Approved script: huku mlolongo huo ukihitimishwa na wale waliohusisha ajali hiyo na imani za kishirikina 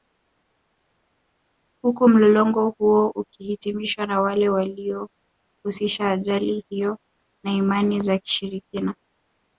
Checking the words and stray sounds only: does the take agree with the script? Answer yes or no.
yes